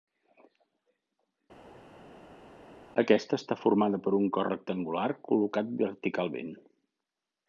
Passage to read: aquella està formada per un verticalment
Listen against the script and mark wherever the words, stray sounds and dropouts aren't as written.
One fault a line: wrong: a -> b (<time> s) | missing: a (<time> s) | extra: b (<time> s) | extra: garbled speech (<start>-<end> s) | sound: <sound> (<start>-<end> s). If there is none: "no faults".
wrong: aquella -> aquesta (3.0 s)
extra: cos rectangular col·locat (4.4 s)